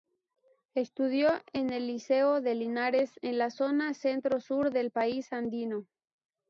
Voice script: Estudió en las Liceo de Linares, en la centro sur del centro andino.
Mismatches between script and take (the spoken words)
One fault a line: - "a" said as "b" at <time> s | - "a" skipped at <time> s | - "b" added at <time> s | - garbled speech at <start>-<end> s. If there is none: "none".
- "las" said as "el" at 1.7 s
- "zona" added at 3.5 s
- "centro" said as "país" at 4.9 s